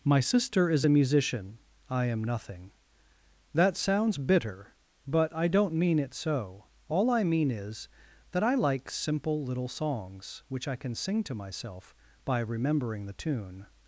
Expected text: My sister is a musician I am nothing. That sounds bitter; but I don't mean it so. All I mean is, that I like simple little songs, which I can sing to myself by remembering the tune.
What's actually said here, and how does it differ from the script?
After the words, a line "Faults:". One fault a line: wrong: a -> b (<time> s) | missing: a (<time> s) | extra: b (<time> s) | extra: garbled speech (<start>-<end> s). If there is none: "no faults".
My sister is a musician I am nothing. That sounds bitter; but I don't mean it so. All I mean is, that I like simple little songs, which I can sing to myself by remembering the tune.
Faults:
no faults